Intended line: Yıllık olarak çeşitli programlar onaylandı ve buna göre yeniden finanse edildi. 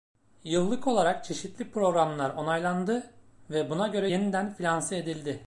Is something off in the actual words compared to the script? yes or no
no